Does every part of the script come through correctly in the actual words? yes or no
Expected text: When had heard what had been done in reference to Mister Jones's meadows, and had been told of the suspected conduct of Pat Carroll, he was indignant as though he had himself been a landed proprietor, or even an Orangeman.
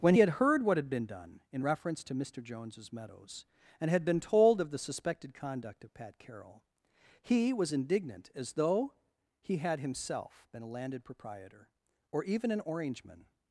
yes